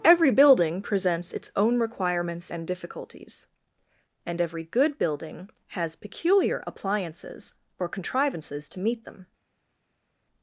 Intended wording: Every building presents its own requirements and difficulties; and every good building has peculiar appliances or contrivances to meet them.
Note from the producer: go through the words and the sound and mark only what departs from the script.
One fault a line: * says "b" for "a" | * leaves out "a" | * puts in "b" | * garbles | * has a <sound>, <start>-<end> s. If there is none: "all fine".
all fine